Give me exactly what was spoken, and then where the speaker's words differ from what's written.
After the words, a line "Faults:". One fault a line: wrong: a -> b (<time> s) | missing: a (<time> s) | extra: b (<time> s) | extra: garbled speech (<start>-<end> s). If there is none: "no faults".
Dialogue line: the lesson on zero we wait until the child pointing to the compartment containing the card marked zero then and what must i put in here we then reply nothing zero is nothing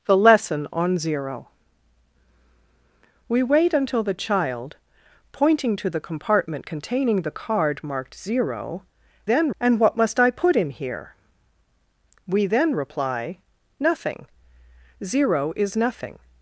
the lesson on zero we wait until the child pointing to the compartment containing the card marked zero then and what must i put in here we then reply nothing zero is nothing
Faults:
no faults